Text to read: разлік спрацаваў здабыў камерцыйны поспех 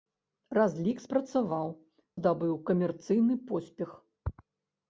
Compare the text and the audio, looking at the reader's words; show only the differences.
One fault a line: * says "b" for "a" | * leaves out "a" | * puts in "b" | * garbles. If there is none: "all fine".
all fine